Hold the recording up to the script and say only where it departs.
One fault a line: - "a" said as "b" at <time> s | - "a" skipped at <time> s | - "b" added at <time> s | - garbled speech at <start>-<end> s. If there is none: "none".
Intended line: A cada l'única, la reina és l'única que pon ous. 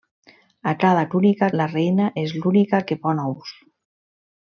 none